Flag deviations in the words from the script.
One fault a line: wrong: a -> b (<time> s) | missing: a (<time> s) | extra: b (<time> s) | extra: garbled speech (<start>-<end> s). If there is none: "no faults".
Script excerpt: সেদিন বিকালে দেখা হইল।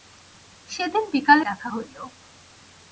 no faults